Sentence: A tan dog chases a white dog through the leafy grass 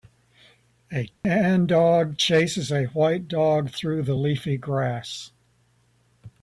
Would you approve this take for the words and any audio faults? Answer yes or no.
no